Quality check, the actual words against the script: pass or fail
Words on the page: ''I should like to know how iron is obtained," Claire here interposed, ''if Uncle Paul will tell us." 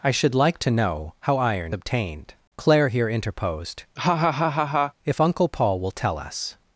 fail